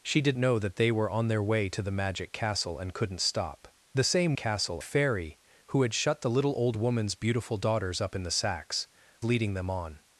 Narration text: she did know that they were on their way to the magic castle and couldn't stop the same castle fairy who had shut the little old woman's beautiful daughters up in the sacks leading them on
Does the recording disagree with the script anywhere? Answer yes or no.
no